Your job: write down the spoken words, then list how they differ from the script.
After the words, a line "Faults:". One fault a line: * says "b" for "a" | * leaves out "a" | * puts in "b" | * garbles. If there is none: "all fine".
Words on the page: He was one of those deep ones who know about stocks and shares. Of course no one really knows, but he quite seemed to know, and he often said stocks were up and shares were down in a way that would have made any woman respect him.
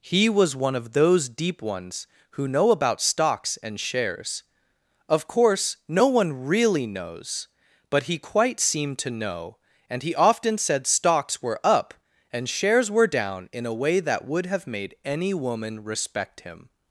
He was one of those deep ones who know about stocks and shares. Of course no one really knows, but he quite seemed to know, and he often said stocks were up and shares were down in a way that would have made any woman respect him.
Faults:
all fine